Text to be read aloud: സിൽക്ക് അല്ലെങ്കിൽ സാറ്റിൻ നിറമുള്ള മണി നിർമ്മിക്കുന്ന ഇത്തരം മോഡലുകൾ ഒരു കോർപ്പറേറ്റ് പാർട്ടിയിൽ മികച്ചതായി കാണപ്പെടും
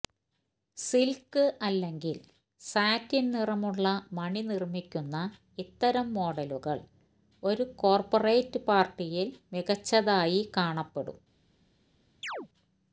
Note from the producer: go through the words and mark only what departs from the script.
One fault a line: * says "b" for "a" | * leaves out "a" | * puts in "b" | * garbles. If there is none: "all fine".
all fine